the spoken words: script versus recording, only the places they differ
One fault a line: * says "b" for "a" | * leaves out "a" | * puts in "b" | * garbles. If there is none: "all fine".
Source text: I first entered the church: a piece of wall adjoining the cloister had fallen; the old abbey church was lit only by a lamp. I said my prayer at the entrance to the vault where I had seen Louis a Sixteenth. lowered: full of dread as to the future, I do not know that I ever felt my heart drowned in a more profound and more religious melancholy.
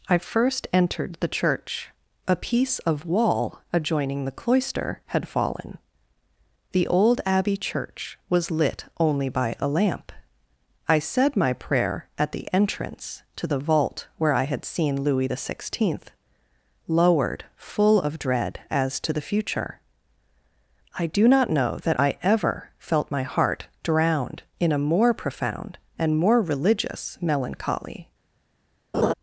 * says "the" for "a"